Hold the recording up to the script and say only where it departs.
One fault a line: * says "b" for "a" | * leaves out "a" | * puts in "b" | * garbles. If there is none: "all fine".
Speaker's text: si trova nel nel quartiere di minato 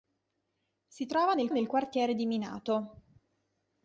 all fine